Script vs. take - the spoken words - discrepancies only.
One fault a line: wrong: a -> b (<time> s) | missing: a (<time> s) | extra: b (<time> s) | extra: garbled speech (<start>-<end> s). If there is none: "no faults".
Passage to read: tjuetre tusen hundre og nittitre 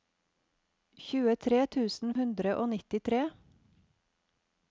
no faults